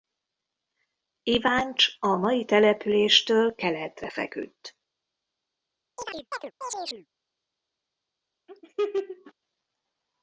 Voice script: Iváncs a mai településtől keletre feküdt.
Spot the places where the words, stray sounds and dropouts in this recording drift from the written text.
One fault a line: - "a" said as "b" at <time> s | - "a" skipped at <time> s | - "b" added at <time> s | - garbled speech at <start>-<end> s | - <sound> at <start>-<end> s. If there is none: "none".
- chirp at 6.0-7.1 s
- laugh at 8.5-9.3 s